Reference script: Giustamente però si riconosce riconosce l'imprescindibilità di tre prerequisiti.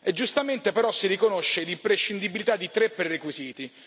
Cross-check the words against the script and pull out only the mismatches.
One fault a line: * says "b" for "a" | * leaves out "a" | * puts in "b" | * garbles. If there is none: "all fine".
* leaves out "riconosce"